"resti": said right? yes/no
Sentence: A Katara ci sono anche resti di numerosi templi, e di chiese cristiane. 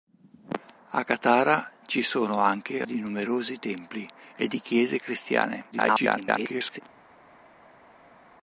no